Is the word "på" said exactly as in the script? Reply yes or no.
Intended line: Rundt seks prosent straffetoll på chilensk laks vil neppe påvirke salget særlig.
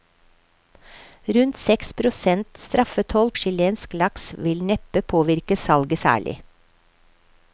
no